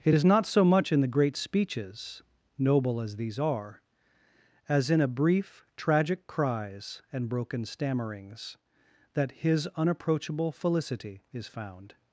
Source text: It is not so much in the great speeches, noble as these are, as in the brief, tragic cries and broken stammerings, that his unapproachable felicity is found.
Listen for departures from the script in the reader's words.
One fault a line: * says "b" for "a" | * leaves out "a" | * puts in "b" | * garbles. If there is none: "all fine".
* says "a" for "the"